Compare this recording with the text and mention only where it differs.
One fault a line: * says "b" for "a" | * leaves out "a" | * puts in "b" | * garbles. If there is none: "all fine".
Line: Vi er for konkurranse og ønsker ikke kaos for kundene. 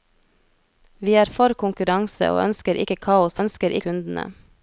* says "ønsker" for "for"